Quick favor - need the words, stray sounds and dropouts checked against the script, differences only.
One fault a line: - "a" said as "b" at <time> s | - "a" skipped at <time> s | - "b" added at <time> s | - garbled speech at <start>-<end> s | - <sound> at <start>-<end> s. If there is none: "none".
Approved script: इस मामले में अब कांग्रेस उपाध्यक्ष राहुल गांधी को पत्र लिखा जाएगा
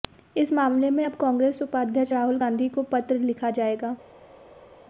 none